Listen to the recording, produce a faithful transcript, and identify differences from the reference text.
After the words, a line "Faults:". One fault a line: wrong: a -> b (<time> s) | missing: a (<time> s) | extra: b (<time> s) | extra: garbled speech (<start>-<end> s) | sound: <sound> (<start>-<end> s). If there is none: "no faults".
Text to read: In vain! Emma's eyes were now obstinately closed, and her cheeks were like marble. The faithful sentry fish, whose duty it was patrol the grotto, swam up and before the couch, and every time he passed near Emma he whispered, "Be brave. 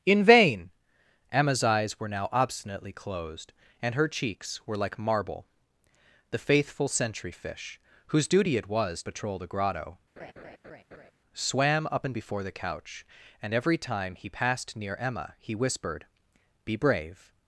In vain! Emma's eyes were now obstinately closed, and her cheeks were like marble. The faithful sentry fish, whose duty it was patrol the grotto, swam up and before the couch, and every time he passed near Emma he whispered, "Be brave.
Faults:
sound: laugh (10.2-11.1 s)